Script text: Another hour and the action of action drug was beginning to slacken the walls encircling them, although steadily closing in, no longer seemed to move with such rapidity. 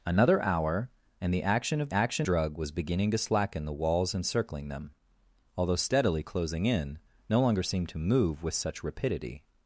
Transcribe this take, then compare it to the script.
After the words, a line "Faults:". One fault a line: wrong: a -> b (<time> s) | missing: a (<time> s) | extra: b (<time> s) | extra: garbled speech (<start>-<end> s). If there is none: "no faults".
Another hour and the action of action drug was beginning to slacken the walls encircling them, although steadily closing in, no longer seemed to move with such rapidity.
Faults:
no faults